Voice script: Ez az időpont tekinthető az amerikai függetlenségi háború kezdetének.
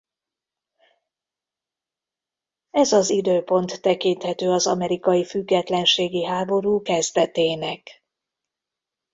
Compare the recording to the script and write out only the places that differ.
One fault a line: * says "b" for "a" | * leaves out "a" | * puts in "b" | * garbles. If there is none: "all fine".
all fine